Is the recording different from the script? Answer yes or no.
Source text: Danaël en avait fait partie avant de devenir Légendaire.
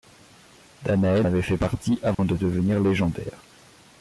yes